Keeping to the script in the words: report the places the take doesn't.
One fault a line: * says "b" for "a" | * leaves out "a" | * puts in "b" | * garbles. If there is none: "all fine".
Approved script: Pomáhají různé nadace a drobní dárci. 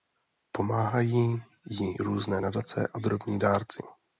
* puts in "jí"